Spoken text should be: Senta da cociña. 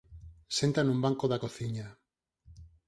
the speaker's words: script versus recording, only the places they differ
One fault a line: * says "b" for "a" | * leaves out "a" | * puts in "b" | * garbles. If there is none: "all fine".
* puts in "nun banco"